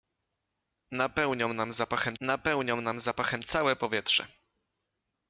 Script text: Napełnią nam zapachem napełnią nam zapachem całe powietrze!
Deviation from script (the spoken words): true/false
false